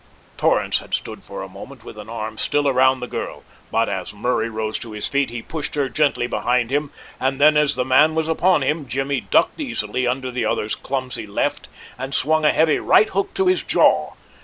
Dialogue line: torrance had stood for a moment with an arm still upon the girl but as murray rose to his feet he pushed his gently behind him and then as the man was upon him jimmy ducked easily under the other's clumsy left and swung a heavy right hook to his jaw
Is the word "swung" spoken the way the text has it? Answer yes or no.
yes